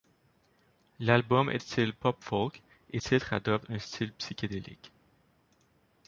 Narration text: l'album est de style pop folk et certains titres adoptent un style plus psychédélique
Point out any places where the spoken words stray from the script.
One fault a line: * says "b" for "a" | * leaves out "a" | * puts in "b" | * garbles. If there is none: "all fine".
* leaves out "de"
* leaves out "certains"
* leaves out "plus"